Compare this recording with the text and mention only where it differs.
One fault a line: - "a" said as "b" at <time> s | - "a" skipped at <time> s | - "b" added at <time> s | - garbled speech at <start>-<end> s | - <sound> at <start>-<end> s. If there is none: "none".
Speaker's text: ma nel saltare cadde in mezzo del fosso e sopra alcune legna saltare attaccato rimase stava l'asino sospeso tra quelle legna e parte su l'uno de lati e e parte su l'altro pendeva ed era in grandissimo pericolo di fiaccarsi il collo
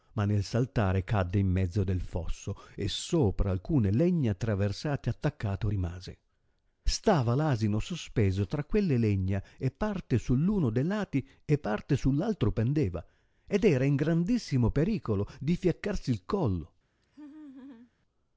- "saltare" said as "traversate" at 4.3 s
- "e" skipped at 11.6 s
- laugh at 17.0-17.9 s